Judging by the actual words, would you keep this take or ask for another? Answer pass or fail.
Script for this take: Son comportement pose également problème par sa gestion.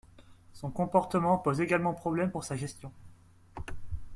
fail